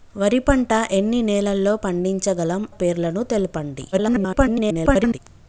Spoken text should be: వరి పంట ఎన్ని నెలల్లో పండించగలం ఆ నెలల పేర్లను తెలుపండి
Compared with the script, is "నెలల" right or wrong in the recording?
wrong